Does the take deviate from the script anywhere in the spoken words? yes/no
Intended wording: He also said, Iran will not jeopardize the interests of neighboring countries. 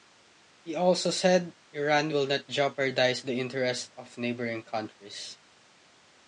no